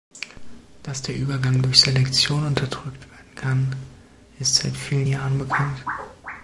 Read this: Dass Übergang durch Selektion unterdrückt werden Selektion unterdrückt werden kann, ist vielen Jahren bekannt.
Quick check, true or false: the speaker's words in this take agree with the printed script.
false